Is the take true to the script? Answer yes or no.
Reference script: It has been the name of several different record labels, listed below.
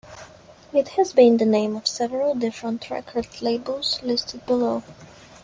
yes